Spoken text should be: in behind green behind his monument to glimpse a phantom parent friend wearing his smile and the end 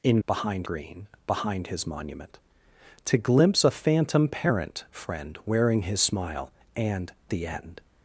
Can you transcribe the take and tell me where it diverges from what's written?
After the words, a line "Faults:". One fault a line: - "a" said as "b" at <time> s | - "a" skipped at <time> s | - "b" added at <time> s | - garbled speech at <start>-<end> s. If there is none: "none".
in behind green behind his monument to glimpse a phantom parent friend wearing his smile and the end
Faults:
none